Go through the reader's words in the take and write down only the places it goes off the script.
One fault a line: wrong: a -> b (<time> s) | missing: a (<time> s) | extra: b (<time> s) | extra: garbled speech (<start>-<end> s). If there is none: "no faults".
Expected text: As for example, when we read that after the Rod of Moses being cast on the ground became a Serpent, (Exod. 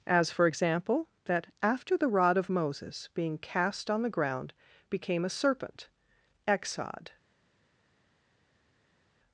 missing: when we read (1.1 s)